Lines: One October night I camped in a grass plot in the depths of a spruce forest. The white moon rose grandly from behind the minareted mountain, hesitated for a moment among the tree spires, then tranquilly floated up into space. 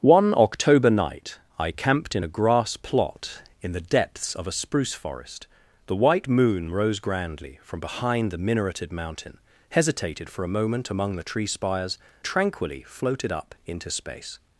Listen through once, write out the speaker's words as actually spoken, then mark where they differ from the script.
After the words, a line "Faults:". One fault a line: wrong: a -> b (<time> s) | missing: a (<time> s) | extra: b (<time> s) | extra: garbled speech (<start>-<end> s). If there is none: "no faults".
One October night I camped in a grass plot in the depths of a spruce forest. The white moon rose grandly from behind the minareted mountain, hesitated for a moment among the tree spires, tranquilly floated up into space.
Faults:
missing: then (12.0 s)